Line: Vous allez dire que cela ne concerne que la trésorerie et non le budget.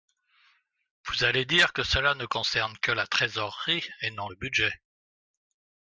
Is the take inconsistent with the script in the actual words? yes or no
no